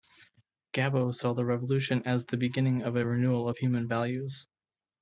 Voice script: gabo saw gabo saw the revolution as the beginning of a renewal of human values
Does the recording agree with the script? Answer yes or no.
no